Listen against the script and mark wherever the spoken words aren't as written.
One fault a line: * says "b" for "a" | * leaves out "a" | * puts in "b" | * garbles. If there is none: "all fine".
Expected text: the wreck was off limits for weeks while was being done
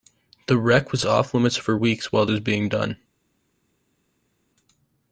all fine